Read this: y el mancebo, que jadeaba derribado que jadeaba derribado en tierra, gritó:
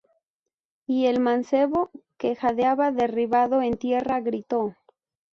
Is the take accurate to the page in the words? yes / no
no